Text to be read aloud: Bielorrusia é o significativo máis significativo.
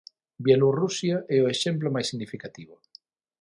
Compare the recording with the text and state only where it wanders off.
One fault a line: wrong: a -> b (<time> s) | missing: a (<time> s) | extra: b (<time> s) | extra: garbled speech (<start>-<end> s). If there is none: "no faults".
wrong: significativo -> exemplo (1.5 s)